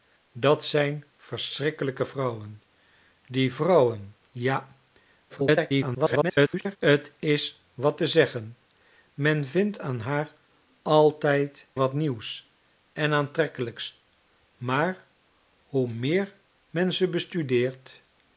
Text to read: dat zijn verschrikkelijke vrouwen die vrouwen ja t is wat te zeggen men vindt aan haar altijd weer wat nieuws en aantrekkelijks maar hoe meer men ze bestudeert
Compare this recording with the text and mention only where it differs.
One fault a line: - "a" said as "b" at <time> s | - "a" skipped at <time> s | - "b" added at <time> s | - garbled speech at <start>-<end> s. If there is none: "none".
- garbled speech at 5.3-6.8 s
- "weer" skipped at 11.7 s